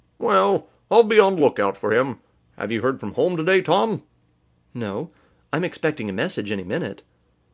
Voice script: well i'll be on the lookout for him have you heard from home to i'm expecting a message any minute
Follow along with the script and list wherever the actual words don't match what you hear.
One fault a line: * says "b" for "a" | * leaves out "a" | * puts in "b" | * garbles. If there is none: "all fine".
* puts in "day tom no"